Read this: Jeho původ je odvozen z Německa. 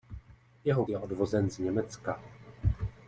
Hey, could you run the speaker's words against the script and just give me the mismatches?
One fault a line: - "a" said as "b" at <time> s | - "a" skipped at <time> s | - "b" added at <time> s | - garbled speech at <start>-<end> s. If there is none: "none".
- "původ" skipped at 0.8 s